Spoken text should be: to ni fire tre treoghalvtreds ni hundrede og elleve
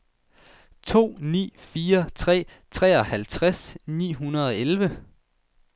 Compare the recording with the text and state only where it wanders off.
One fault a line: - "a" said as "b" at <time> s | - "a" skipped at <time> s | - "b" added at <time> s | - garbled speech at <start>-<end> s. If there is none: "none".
none